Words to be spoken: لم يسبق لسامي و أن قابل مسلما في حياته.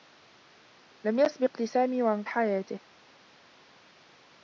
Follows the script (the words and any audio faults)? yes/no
no